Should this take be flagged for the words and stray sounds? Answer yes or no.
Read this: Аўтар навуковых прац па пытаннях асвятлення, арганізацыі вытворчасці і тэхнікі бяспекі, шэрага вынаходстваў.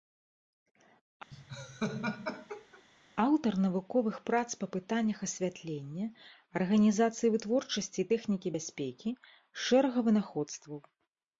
yes